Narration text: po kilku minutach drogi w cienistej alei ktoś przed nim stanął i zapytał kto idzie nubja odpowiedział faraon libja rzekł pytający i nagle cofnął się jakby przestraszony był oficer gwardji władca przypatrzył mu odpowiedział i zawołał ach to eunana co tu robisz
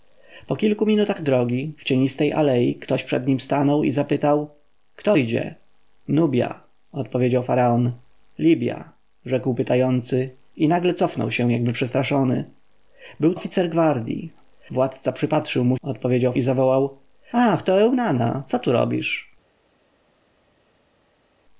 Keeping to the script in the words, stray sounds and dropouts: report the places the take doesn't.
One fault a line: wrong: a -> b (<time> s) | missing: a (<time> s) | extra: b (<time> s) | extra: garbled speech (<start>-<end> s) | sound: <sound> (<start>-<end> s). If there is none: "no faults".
no faults